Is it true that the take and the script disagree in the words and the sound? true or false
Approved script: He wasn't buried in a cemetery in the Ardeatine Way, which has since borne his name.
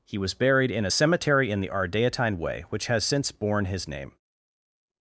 true